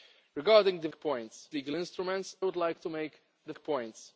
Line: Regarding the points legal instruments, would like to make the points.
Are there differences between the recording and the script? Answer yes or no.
no